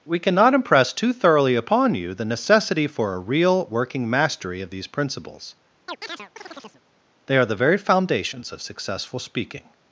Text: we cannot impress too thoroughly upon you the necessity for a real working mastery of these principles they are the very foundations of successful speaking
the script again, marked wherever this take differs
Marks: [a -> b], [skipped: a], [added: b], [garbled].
we cannot impress too thoroughly upon you the necessity for a real working mastery of these principles they are the very foundations of successful speaking